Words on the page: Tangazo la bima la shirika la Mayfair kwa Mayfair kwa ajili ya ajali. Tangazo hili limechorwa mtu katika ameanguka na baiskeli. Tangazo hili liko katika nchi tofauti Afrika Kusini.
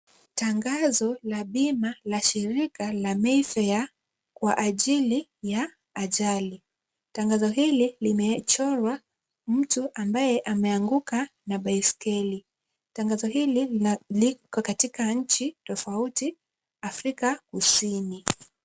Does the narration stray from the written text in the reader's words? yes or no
yes